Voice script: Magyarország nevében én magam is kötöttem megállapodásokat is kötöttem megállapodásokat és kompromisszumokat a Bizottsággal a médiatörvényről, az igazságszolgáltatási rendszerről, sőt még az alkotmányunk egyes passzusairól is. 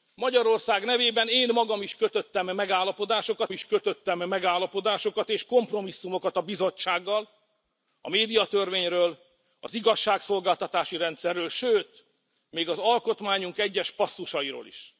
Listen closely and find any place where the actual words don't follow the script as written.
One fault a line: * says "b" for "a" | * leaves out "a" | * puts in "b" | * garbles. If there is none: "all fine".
all fine